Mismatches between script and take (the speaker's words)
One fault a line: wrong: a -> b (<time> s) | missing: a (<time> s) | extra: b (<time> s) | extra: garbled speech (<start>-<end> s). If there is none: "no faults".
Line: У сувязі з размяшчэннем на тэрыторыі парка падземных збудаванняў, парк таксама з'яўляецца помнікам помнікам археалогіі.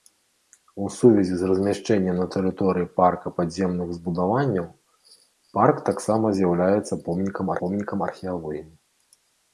no faults